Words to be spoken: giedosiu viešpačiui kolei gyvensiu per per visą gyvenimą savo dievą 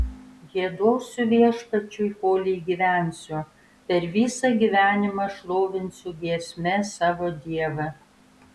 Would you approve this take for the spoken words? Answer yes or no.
no